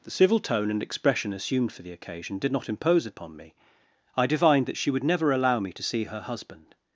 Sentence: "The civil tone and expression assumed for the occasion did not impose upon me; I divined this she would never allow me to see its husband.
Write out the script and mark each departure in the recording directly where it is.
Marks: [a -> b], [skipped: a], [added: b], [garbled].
"The civil tone and expression assumed for the occasion did not impose upon me; I divined [this -> that] she would never allow me to see [its -> her] husband.